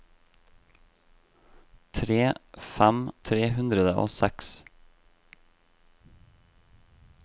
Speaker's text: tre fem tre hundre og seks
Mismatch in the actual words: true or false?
false